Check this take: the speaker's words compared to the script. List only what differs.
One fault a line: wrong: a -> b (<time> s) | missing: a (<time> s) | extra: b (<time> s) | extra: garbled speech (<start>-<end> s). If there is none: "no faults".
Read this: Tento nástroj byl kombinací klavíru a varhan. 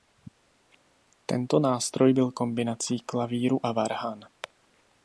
no faults